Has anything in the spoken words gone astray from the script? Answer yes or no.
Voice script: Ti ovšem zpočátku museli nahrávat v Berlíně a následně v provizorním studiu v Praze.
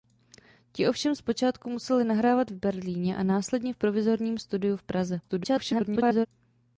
yes